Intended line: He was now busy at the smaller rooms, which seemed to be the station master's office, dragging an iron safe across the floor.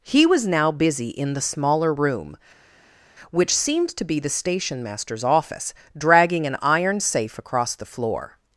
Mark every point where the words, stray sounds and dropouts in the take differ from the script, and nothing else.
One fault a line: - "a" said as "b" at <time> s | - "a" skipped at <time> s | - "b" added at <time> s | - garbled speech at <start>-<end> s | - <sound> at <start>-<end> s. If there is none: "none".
- "at" said as "in" at 1.1 s
- "rooms" said as "room" at 1.9 s